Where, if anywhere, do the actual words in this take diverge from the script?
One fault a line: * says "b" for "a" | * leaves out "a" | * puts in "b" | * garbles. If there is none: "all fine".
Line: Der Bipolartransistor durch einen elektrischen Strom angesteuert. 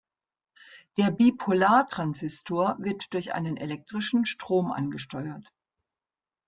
* puts in "wird"